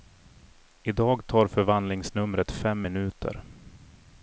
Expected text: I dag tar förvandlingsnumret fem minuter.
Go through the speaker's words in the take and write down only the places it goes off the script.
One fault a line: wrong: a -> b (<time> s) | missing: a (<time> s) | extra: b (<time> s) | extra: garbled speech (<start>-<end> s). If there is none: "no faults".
no faults